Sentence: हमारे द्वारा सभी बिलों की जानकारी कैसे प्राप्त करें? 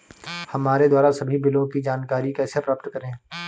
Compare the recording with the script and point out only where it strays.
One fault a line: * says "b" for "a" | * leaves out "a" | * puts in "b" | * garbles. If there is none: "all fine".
all fine